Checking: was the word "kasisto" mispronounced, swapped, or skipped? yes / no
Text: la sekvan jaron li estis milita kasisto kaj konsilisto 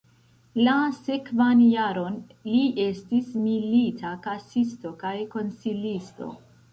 no